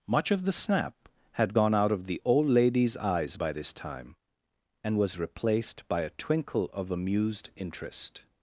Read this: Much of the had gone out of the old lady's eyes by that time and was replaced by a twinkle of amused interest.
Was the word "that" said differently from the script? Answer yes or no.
yes